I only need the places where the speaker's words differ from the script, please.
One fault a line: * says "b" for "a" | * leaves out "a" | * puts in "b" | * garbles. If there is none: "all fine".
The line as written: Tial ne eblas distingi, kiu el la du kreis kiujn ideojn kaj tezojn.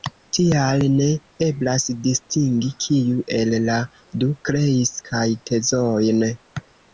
* leaves out "kiujn ideojn"